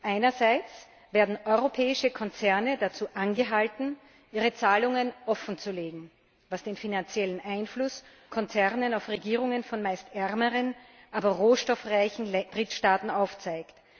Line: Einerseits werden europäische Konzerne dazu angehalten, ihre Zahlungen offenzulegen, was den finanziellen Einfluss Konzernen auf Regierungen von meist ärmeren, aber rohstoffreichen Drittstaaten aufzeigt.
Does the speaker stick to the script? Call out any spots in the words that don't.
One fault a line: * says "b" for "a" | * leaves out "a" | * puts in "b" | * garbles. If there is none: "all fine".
all fine